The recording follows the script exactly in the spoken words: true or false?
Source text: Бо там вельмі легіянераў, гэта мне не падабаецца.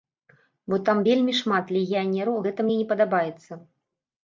false